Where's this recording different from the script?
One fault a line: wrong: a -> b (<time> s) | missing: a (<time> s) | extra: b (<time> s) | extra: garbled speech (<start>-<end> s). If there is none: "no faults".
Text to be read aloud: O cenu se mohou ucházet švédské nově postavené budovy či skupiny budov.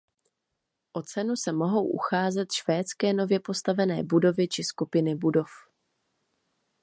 no faults